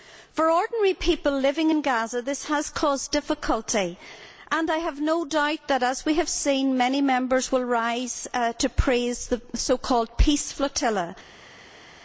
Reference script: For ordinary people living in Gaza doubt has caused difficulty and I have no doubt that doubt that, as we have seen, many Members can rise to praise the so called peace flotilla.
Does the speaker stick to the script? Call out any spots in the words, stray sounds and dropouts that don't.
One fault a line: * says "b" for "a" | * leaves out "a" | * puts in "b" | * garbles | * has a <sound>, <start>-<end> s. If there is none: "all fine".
* says "this" for "doubt"
* leaves out "doubt that"
* says "will" for "can"